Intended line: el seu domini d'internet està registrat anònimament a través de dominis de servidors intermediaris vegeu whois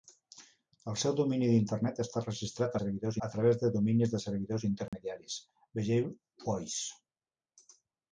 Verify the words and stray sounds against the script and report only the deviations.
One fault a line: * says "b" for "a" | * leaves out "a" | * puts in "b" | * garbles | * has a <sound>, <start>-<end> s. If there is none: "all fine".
* says "servidors" for "anònimament"
* has a dropout, 4.9-4.9 s